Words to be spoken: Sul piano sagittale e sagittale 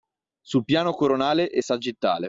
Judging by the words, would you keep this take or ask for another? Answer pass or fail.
fail